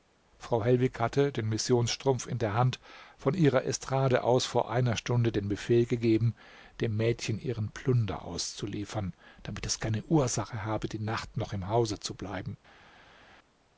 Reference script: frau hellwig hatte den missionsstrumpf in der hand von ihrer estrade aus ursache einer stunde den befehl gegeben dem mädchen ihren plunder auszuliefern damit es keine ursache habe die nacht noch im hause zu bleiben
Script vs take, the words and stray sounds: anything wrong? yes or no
yes